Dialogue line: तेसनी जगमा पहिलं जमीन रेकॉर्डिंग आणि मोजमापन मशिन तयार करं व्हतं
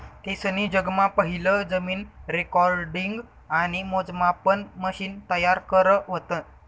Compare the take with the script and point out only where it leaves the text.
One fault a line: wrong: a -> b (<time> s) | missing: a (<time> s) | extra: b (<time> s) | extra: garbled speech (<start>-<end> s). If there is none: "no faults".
no faults